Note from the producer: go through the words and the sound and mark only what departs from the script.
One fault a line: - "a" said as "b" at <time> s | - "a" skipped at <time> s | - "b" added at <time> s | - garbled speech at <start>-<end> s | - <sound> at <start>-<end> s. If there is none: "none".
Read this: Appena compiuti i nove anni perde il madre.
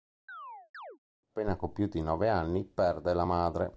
- chirp at 0.3-1.0 s
- "il" said as "la" at 3.1 s